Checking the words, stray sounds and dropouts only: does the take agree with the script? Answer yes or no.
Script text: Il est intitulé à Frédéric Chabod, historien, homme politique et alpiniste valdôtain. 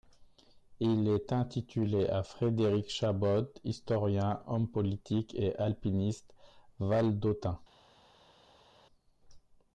yes